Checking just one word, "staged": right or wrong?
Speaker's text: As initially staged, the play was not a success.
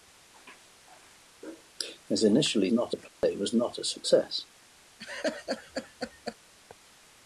wrong